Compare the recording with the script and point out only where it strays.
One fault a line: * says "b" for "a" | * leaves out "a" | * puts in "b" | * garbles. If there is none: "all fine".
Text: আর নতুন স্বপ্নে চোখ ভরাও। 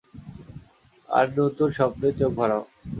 all fine